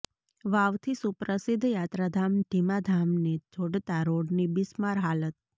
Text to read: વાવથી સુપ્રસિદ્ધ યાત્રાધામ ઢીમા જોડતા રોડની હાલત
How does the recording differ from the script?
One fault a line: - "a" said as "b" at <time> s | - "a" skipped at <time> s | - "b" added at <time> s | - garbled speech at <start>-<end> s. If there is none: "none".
- "ધામને" added at 2.9 s
- "બિસ્માર" added at 4.6 s